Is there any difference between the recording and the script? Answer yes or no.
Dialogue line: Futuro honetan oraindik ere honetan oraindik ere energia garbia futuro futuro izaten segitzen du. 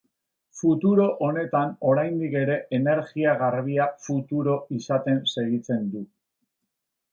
yes